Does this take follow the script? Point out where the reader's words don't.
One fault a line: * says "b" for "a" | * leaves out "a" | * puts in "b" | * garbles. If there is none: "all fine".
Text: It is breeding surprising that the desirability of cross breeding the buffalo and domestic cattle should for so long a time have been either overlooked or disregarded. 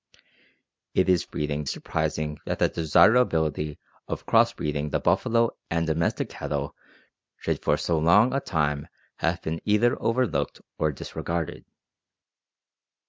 all fine